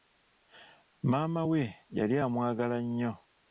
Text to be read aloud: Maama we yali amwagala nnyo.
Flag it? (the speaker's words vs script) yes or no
no